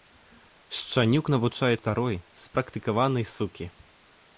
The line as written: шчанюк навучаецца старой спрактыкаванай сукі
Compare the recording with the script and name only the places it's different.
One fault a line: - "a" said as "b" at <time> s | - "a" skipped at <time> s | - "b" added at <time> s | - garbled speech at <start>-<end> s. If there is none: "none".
none